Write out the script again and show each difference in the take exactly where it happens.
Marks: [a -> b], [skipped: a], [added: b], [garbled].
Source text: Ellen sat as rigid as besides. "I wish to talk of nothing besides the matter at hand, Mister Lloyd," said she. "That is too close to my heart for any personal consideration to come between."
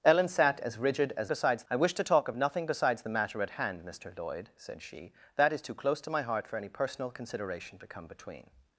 Ellen sat as rigid as besides. "I wish to talk of nothing besides the matter at hand, Mister Lloyd," said she. "That is too close to my heart for any personal consideration to come between."